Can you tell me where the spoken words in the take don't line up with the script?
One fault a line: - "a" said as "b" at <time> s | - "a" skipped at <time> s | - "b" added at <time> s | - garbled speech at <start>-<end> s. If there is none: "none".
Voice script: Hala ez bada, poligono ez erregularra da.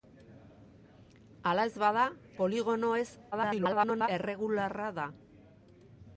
- garbled speech at 3.3-4.1 s